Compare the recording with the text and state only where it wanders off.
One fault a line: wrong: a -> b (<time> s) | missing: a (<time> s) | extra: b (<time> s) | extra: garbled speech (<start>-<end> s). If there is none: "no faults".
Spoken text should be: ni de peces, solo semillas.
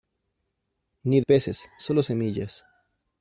missing: de (1.2 s)